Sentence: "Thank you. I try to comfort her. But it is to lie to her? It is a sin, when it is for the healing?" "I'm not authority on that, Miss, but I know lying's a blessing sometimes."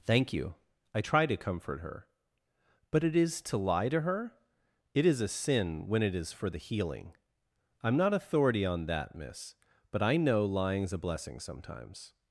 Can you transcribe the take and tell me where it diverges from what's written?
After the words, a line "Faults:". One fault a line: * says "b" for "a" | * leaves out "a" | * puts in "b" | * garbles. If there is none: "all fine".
"Thank you. I try to comfort her. But it is to lie to her? It is a sin, when it is for the healing?" "I'm not authority on that, Miss, but I know lying's a blessing sometimes."
Faults:
all fine